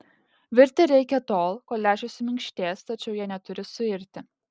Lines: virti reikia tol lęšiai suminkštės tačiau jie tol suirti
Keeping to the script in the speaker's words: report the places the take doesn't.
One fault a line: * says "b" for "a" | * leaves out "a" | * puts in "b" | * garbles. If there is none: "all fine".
* puts in "kol"
* says "neturi" for "tol"